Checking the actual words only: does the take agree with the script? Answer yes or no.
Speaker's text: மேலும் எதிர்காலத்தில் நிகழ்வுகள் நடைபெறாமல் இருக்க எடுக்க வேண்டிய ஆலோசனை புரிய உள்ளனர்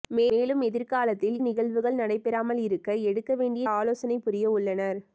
yes